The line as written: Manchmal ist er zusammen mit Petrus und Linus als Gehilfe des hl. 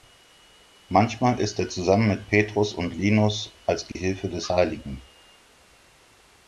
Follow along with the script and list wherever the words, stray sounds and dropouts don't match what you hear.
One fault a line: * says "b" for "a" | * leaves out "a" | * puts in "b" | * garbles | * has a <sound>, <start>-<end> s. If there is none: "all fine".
* has a dropout, 3.9-4.0 s